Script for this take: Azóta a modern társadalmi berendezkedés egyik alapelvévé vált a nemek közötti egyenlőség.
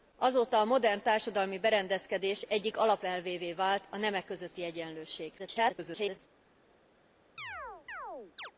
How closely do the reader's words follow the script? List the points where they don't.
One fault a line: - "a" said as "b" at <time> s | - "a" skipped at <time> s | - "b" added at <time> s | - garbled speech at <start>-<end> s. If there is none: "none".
- garbled speech at 5.4-6.2 s